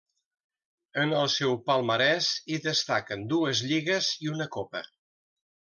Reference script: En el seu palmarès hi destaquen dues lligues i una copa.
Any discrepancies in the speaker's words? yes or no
no